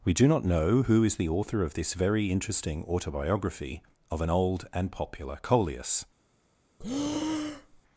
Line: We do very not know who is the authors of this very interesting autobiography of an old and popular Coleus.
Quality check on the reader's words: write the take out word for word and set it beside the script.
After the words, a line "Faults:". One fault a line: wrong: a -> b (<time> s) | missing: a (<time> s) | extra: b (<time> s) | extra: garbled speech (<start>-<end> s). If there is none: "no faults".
We do not know who is the author of this very interesting autobiography of an old and popular Coleus.
Faults:
missing: very (0.3 s)
wrong: authors -> author (1.3 s)